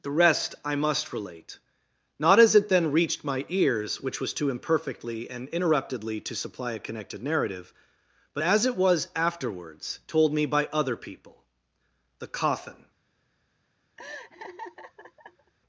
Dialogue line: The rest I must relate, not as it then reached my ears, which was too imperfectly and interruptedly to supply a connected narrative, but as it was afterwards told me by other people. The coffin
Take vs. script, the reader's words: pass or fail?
pass